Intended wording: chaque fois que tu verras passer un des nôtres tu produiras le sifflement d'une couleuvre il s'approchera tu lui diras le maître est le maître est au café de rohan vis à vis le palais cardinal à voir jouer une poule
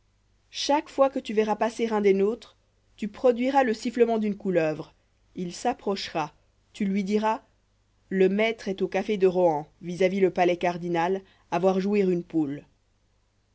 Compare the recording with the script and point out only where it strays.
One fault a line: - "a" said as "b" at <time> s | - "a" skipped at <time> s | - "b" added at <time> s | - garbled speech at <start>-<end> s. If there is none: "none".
- "le maître est" skipped at 8.8 s